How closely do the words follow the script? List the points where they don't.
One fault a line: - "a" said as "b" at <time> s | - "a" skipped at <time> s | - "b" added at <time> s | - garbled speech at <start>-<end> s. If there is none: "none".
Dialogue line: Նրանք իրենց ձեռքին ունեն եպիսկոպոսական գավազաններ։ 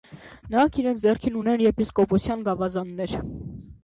none